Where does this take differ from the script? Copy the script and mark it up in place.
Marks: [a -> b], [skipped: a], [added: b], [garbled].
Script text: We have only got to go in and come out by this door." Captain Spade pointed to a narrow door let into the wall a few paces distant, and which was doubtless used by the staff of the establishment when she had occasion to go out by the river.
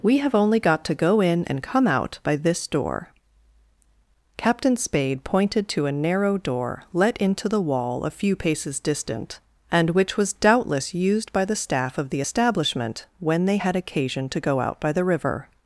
We have only got to go in and come out by this door." Captain Spade pointed to a narrow door let into the wall a few paces distant, and which was doubtless used by the staff of the establishment when [she -> they] had occasion to go out by the river.